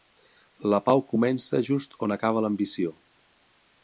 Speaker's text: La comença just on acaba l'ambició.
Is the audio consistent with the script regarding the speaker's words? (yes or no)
no